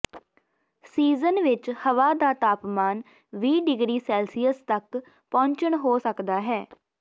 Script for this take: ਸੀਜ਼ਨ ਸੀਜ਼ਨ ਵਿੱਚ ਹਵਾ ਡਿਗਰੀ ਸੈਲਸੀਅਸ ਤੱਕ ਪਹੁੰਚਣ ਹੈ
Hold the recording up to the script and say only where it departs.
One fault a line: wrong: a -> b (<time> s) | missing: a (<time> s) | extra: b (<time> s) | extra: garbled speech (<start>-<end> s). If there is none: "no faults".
missing: ਸੀਜ਼ਨ (1.4 s)
extra: ਦਾ ਤਾਪਮਾਨ ਵੀਹ (2.1 s)
extra: ਹੋ ਸਕਦਾ (5.8 s)